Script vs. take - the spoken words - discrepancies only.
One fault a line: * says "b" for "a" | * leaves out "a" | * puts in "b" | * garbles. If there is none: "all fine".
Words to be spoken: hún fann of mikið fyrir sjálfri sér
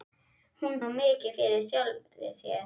* leaves out "fann"